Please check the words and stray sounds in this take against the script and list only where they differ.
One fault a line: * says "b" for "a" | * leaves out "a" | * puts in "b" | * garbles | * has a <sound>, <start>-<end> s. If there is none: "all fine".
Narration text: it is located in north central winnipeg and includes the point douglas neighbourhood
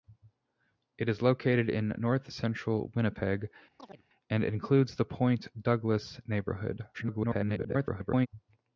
* has a chirp, 3.8-4.0 s
* garbles